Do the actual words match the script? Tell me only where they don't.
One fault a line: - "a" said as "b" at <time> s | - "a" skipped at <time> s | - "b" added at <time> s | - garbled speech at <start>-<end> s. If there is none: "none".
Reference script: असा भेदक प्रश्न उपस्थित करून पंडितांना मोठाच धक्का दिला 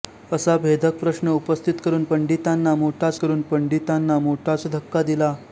- "करून पंडितांना मोठाच" added at 3.2 s